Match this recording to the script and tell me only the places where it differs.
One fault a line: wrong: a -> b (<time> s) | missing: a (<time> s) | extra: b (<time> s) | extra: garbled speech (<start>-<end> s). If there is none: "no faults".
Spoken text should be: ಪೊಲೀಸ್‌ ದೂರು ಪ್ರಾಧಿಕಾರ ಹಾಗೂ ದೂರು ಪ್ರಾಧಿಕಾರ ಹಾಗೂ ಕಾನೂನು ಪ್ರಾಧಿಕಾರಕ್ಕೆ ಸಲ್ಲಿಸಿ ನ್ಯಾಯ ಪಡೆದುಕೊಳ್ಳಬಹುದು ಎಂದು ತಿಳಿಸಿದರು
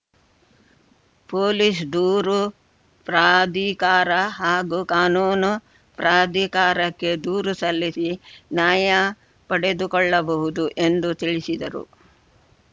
missing: ದೂರು ಪ್ರಾಧಿಕಾರ ಹಾಗೂ (4.8 s)
extra: ದೂರು (7.2 s)